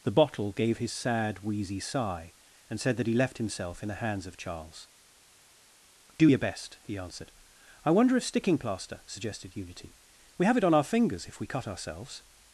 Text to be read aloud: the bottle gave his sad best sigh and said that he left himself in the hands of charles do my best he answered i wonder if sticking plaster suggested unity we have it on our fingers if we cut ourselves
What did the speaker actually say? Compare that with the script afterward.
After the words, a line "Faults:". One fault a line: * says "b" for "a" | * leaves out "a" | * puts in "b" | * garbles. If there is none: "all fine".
the bottle gave his sad wheezy sigh and said that he left himself in the hands of charles do your best he answered i wonder if sticking plaster suggested unity we have it on our fingers if we cut ourselves
Faults:
* says "wheezy" for "best"
* says "your" for "my"